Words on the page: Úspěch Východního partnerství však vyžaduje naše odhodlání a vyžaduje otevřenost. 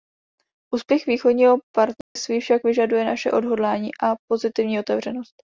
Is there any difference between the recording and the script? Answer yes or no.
yes